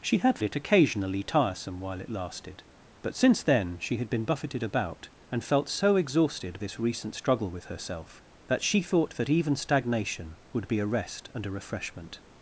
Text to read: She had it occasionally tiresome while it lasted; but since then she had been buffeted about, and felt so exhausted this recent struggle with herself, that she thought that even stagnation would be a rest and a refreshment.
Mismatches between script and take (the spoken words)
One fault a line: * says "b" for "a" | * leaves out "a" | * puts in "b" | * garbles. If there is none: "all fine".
all fine